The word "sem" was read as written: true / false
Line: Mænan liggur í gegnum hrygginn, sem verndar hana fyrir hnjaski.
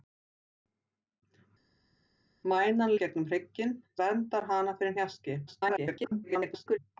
false